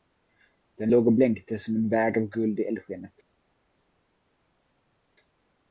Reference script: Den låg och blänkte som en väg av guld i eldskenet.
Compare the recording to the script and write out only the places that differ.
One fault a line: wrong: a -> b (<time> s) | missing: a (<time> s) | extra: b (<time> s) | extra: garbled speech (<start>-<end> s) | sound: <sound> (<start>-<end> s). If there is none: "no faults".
no faults